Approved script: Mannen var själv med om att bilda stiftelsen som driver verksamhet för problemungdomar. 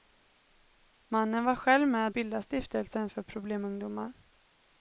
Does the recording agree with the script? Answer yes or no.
no